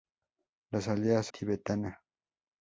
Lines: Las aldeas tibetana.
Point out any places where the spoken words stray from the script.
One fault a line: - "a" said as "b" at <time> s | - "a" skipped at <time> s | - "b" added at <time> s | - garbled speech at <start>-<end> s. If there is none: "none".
none